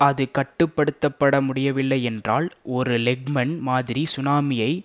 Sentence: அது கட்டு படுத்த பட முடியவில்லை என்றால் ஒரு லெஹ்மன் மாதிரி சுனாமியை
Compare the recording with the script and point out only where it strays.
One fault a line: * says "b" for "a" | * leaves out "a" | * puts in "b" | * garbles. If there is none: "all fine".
all fine